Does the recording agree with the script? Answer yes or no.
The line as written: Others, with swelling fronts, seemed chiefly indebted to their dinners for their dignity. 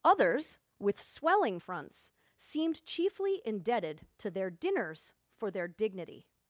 yes